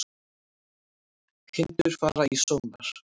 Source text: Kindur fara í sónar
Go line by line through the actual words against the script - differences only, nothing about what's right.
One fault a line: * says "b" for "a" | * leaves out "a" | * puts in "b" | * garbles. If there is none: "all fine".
all fine